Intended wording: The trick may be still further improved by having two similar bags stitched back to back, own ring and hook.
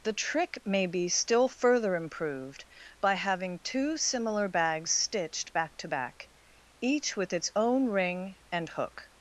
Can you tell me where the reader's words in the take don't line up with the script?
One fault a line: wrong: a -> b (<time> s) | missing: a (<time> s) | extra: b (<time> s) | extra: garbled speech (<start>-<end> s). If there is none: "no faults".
extra: each with its (6.8 s)